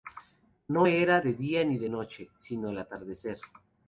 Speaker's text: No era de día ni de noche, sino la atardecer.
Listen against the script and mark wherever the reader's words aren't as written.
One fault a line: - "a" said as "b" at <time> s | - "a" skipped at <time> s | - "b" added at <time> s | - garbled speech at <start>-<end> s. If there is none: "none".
- "la" said as "el" at 2.7 s